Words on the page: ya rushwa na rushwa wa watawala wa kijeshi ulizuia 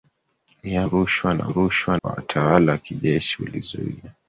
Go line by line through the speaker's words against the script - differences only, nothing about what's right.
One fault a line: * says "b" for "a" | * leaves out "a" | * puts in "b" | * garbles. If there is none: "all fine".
all fine